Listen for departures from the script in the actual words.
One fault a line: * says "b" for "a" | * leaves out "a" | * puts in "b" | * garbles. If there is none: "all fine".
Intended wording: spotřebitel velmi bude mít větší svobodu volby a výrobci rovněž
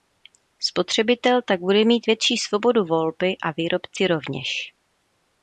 * says "tak" for "velmi"